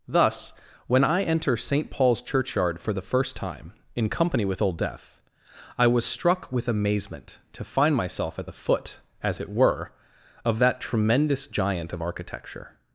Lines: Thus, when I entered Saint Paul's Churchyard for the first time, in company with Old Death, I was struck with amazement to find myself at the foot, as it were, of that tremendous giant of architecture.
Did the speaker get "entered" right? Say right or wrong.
wrong